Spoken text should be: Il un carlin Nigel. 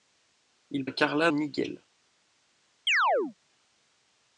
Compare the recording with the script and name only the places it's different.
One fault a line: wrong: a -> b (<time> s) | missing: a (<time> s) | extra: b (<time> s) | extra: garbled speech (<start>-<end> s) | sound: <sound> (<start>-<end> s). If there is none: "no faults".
sound: chirp (2.9-3.3 s)